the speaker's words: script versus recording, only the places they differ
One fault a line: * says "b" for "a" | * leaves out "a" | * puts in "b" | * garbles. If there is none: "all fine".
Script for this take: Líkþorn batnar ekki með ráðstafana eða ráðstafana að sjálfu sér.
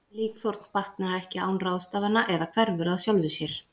* says "án" for "með"
* says "hverfur" for "ráðstafana"